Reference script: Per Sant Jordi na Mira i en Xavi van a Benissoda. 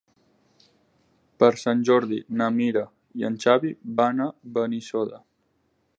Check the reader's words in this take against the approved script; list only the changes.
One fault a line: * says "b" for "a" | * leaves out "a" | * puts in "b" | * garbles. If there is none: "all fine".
all fine